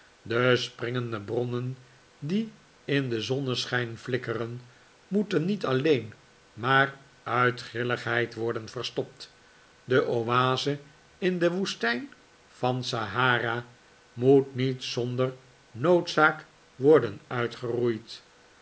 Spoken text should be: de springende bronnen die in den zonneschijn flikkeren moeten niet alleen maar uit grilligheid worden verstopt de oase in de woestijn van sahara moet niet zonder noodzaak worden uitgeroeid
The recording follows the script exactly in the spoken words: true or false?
true